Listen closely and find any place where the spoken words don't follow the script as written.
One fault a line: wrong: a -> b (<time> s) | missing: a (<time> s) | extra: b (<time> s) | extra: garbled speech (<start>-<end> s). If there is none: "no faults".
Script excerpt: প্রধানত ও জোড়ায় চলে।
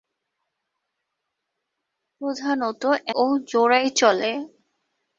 no faults